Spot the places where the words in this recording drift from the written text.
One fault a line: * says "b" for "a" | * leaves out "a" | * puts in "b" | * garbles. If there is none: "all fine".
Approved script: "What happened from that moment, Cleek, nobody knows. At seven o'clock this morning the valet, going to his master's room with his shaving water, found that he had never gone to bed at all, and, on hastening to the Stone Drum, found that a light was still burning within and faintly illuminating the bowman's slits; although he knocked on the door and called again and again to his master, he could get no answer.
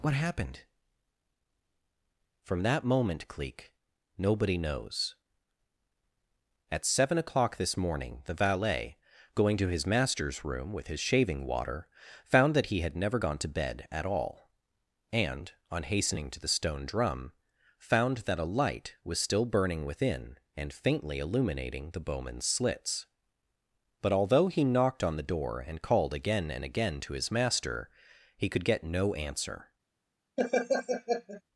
* puts in "but"